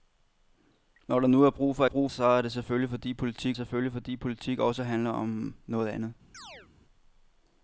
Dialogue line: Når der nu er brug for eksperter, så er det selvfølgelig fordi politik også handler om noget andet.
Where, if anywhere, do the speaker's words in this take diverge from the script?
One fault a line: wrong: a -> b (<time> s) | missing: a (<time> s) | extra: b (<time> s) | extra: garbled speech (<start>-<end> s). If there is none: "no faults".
wrong: eksperter -> brug (1.8 s)
extra: selvfølgelig fordi politik (3.6 s)